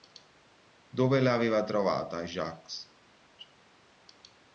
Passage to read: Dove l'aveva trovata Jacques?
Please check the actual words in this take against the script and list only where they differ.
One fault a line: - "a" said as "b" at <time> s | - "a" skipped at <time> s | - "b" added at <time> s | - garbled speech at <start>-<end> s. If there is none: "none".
none